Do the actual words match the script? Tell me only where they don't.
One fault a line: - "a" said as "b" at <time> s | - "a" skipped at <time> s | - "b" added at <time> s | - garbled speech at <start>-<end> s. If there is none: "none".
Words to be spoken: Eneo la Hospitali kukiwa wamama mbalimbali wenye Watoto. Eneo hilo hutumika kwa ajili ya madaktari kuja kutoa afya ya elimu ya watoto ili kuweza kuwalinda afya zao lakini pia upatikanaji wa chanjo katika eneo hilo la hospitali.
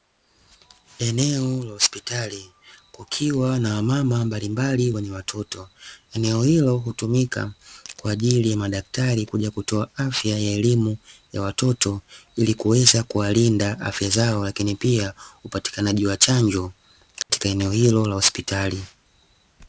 - "na" added at 3.6 s